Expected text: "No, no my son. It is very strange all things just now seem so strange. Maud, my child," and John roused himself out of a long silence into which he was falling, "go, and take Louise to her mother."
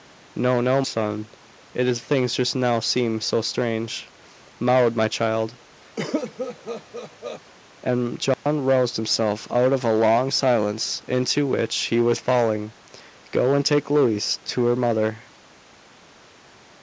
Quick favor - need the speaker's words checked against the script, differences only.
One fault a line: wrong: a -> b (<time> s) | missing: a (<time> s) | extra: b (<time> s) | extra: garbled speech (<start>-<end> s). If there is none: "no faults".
missing: my (0.8 s)
missing: very strange all (2.0 s)